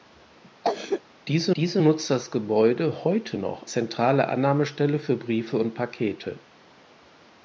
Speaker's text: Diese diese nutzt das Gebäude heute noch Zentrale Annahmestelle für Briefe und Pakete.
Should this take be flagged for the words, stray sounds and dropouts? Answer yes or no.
yes